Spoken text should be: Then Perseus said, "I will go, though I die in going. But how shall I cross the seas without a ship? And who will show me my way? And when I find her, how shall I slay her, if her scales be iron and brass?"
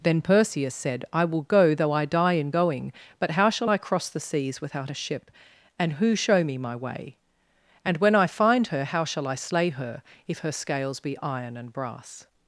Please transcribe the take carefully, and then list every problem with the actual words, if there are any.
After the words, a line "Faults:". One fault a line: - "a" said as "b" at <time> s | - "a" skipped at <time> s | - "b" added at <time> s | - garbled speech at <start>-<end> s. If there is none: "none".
Then Perseus said, "I will go, though I die in going. But how shall I cross the seas without a ship? And who show me my way? And when I find her, how shall I slay her, if her scales be iron and brass?"
Faults:
- "will" skipped at 6.2 s